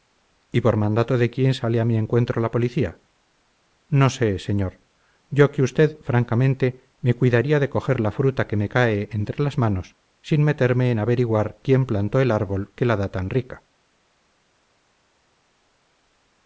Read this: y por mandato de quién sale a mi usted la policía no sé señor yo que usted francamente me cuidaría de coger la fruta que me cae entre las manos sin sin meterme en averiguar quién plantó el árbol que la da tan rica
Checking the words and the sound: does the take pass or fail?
fail